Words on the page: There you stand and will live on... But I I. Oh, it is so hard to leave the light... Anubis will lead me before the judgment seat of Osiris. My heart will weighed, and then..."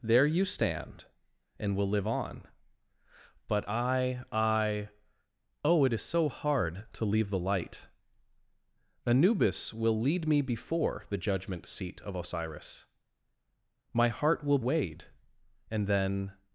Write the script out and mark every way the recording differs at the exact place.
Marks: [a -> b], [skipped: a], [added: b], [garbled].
There you stand and will live on... But I I. Oh, it is so hard to leave the light... Anubis will lead me before the judgment seat of Osiris. My heart will weighed, and then..."